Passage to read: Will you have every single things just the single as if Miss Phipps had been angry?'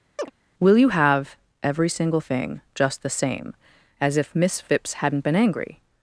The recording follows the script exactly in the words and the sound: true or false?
false